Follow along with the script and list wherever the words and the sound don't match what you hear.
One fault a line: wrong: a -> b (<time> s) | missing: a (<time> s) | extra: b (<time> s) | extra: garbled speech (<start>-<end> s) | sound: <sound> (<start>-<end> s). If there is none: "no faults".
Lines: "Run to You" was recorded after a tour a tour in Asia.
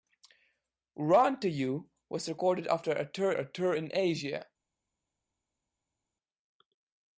no faults